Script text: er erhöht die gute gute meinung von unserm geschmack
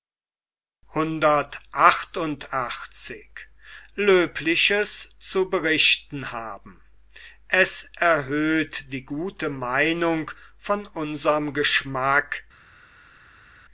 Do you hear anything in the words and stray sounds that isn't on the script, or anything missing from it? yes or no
yes